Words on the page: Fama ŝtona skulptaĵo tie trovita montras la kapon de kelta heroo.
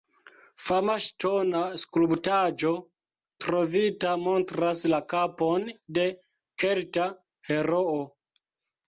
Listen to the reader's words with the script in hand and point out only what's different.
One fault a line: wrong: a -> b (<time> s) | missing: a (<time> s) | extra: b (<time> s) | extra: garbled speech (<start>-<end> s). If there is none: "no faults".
missing: tie (2.7 s)